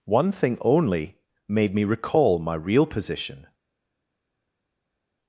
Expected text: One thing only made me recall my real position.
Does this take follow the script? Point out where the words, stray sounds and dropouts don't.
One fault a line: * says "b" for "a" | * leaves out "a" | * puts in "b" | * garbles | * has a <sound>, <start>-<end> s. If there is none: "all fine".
all fine